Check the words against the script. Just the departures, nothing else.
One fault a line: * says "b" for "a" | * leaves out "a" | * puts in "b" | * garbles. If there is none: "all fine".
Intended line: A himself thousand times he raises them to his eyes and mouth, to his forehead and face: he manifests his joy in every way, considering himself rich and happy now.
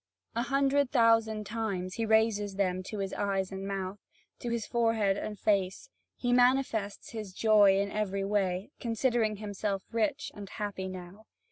* says "hundred" for "himself"